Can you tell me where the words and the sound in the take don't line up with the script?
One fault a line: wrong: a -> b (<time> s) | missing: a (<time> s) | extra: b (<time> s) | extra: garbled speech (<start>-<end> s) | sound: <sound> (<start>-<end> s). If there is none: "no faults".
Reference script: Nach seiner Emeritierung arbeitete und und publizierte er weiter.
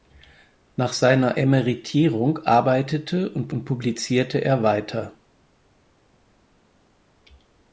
no faults